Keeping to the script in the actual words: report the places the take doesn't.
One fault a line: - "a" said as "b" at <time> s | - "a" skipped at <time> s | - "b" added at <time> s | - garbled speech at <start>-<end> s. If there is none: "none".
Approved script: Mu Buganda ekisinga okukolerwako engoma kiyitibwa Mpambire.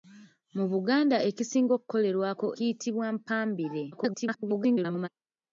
- "engoma" skipped at 2.5 s
- garbled speech at 3.9-5.1 s